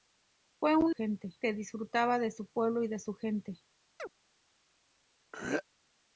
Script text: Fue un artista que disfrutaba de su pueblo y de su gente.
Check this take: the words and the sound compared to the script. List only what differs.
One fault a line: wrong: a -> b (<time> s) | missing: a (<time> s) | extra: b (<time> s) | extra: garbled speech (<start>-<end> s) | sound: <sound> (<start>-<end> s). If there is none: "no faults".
wrong: artista -> gente (0.9 s)
sound: chirp (4.0-4.1 s)
sound: throat clearing (5.3-5.6 s)